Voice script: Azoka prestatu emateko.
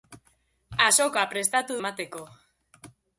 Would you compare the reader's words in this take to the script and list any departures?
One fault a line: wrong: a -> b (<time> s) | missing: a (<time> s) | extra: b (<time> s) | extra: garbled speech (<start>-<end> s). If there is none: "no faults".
no faults